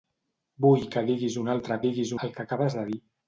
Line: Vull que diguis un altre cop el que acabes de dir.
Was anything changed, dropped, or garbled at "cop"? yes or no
yes